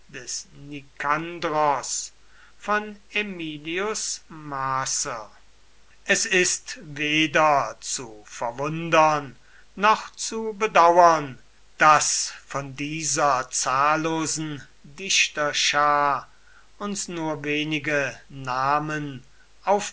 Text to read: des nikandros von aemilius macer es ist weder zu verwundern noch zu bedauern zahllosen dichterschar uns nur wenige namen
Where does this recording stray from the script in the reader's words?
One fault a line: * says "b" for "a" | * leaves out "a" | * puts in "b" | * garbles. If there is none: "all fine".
* puts in "daß von dieser"